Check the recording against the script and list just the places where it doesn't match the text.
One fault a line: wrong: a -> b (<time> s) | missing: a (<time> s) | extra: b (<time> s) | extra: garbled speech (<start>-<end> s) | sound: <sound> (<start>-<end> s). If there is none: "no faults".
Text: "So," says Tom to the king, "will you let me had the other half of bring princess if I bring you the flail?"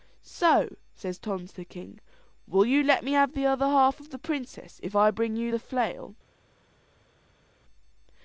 wrong: had -> have (3.1 s)
wrong: bring -> the (4.1 s)